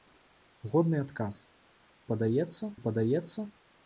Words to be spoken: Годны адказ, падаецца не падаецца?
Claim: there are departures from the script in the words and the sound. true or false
false